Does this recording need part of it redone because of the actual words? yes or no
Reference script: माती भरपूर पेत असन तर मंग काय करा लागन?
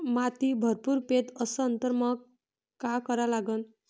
no